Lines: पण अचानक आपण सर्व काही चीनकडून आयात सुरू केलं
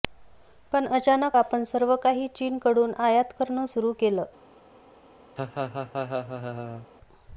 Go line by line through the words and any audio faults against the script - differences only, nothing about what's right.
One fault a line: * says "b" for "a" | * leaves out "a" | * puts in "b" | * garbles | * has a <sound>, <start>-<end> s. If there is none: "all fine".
* puts in "करणं"
* has a laugh, 5.4-6.9 s